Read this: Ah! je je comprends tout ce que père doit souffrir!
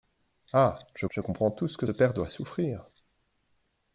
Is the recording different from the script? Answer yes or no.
no